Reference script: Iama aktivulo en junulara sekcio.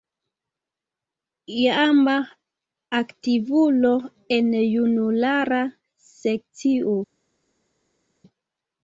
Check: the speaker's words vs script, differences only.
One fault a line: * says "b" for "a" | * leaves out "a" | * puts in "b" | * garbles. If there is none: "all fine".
all fine